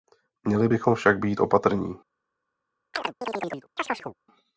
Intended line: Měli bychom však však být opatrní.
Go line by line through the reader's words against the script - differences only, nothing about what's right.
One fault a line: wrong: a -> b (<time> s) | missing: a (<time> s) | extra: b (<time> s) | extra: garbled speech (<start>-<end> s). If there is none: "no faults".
missing: však (1.2 s)